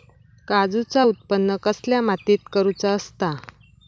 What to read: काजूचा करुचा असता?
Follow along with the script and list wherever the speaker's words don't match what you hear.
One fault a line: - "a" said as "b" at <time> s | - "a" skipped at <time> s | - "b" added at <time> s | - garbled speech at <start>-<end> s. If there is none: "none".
- "उत्त्पन कसल्या मातीत" added at 1.0 s